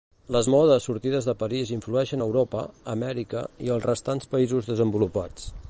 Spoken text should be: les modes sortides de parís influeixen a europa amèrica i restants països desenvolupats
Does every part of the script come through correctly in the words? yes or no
no